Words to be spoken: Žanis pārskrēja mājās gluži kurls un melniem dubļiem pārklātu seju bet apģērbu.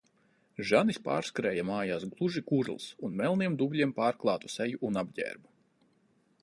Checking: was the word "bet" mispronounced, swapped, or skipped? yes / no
yes